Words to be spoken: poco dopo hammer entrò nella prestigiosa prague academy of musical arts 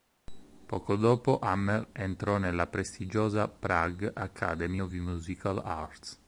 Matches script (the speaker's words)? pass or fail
pass